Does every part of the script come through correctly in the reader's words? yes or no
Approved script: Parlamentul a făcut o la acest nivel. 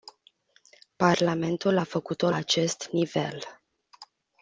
no